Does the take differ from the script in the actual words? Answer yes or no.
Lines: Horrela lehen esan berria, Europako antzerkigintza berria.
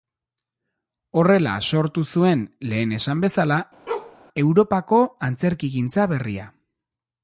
yes